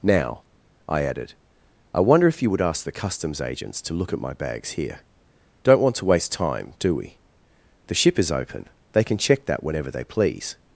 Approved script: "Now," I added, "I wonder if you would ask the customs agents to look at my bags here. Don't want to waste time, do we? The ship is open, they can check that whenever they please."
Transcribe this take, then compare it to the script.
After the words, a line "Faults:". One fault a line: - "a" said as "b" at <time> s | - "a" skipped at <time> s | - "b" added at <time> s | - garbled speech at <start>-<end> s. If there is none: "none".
"Now," I added, "I wonder if you would ask the customs agents to look at my bags here. Don't want to waste time, do we? The ship is open, they can check that whenever they please."
Faults:
none